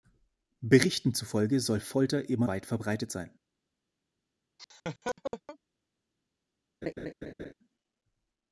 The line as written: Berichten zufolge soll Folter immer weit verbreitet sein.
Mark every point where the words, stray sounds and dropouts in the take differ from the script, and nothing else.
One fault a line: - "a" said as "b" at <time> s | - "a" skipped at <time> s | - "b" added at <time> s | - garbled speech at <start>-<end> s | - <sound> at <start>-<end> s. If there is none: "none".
- laugh at 4.6-5.6 s
- laugh at 6.8-7.5 s